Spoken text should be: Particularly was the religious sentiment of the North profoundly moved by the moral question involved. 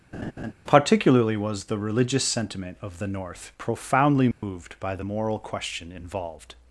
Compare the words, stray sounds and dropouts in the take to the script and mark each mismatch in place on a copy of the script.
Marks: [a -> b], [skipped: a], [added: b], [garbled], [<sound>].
[laugh] Particularly was the religious sentiment of the North profoundly moved [dropout] by the moral question involved.